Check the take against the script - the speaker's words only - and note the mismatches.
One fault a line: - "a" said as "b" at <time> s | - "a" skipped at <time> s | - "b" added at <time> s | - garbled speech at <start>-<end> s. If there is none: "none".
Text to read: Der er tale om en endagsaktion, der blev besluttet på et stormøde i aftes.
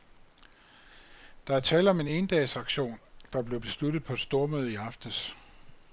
none